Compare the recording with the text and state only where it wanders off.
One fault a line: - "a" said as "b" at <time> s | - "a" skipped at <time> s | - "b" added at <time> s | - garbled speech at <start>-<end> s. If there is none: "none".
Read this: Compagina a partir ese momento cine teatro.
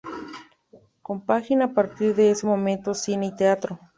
- "de" added at 2.1 s
- "y" added at 3.3 s